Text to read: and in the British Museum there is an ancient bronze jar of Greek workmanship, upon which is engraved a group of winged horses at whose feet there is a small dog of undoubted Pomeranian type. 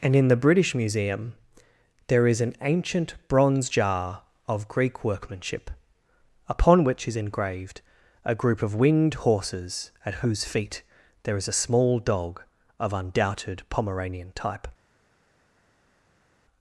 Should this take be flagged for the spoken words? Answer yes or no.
no